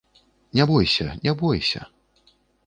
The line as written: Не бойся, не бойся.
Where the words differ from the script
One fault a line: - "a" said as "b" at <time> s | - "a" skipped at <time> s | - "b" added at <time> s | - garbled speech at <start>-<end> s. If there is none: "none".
none